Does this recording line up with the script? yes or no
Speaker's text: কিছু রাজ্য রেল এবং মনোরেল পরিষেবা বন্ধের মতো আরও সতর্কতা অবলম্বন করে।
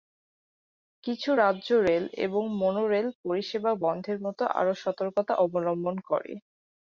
yes